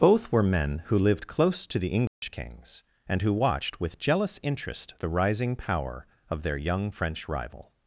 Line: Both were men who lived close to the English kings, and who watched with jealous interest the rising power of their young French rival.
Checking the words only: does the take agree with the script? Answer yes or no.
yes